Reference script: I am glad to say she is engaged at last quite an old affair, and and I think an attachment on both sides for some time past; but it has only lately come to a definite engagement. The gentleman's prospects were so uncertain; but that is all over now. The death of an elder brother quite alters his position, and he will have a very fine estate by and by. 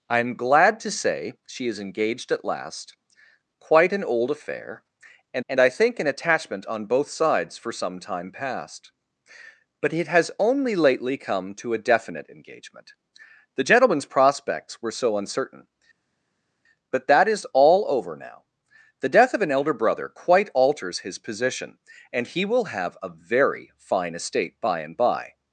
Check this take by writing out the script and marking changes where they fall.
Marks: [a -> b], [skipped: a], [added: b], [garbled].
I am glad to say she is engaged at last quite an old affair, and and I think an attachment on both sides for some time past; but it has only lately come to a definite engagement. The gentleman's prospects were so uncertain; but that is all over now. The death of an elder brother quite alters his position, and he will have a very fine estate by and by.